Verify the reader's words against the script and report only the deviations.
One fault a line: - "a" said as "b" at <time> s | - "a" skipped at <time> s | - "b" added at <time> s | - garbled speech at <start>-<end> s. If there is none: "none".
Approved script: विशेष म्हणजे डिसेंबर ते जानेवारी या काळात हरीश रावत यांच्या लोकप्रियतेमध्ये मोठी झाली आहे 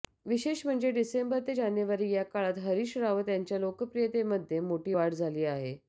- "वाढ" added at 4.9 s